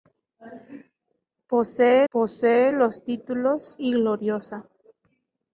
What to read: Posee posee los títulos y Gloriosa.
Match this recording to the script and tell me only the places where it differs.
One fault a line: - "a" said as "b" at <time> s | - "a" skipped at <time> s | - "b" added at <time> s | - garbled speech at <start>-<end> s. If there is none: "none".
none